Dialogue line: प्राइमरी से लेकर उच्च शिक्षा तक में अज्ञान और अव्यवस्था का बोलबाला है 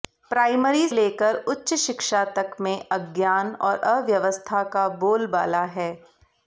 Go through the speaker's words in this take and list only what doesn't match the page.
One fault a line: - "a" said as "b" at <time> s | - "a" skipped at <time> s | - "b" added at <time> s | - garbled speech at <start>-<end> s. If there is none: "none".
- "से" skipped at 0.9 s